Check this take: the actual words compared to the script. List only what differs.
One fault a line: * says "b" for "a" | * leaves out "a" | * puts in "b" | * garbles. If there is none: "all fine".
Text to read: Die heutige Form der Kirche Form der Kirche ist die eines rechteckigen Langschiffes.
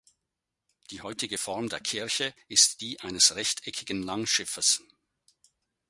* leaves out "Form der Kirche"